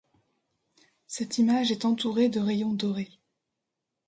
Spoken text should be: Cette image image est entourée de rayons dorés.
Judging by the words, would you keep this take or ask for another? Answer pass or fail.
fail